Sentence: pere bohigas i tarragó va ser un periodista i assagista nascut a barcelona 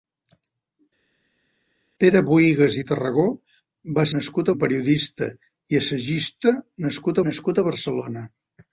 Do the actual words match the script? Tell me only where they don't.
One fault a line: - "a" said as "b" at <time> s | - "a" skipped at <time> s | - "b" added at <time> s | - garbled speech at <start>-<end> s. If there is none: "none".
- "ser" said as "nascut" at 4.2 s
- "nascut" added at 7.3 s